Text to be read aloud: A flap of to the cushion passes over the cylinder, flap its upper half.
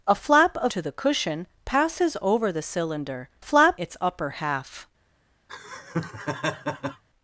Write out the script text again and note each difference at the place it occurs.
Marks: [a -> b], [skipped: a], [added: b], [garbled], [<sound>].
A flap of to the cushion passes over the cylinder, flap its upper half. [laugh]